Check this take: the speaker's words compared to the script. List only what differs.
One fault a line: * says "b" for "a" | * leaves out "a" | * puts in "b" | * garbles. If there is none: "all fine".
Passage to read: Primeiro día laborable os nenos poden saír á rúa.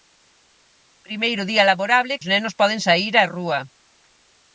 all fine